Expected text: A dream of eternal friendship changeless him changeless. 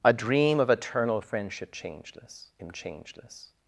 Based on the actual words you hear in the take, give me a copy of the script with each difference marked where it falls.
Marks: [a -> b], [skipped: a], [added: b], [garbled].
A dream of eternal friendship changeless him changeless.